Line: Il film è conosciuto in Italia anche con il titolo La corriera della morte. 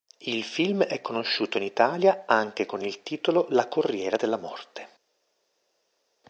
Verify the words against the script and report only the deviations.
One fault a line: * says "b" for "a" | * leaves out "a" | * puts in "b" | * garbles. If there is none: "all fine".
all fine